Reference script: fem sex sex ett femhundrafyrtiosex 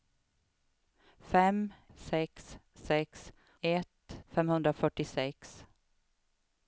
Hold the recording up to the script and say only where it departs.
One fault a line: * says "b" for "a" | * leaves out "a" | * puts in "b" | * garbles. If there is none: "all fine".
all fine